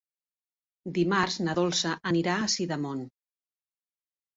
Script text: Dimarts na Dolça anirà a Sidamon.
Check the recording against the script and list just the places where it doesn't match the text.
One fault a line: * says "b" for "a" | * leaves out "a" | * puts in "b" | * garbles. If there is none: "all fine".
all fine